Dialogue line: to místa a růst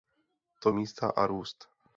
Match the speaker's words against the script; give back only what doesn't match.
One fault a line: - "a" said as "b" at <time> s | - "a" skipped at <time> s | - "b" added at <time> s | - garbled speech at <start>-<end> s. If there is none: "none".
none